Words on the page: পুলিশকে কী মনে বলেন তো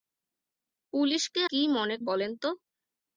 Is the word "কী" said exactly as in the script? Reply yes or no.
yes